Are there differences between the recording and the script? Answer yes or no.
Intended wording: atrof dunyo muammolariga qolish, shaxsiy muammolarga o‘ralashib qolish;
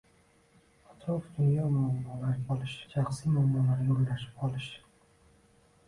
no